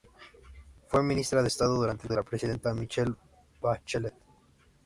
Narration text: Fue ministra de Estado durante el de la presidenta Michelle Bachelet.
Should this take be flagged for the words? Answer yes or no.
no